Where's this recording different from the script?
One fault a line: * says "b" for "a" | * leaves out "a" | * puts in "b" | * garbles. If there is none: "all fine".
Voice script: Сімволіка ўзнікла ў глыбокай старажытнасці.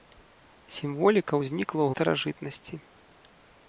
* leaves out "глыбокай"